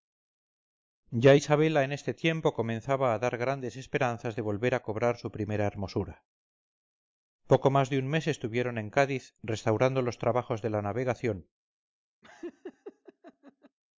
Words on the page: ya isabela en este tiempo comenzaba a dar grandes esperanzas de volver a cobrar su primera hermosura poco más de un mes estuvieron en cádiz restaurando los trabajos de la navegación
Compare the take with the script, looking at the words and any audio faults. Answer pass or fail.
fail